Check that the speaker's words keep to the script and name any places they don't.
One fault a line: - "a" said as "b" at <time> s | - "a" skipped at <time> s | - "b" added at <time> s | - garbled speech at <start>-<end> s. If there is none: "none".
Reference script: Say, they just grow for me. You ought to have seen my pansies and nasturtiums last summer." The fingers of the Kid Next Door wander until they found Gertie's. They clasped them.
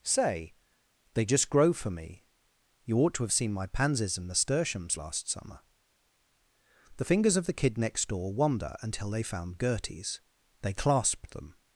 none